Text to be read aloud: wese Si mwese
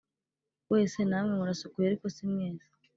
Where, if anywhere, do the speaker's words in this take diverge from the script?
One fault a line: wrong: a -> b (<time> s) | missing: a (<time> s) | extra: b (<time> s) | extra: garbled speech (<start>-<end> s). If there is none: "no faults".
extra: Namwe murasukuye ariko (1.1 s)